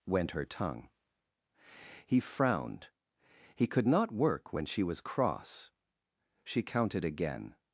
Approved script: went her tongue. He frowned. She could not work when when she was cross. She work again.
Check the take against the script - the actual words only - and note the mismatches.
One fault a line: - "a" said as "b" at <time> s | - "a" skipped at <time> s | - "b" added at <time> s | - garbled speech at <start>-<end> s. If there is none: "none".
- "She" said as "He" at 3.5 s
- "when" skipped at 4.7 s
- "work" said as "counted" at 6.6 s